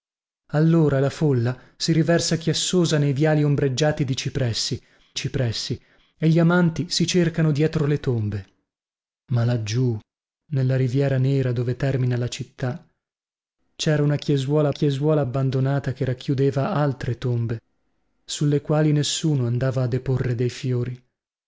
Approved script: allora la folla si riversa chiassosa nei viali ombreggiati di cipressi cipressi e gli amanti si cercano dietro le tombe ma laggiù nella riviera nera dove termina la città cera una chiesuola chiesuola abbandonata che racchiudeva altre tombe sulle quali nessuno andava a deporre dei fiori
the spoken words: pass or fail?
pass